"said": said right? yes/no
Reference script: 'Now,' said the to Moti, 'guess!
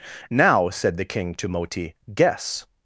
yes